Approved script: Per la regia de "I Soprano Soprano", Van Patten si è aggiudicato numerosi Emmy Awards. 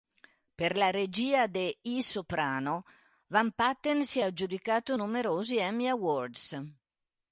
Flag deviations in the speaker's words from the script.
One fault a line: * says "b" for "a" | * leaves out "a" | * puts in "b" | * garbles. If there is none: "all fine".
* leaves out "Soprano"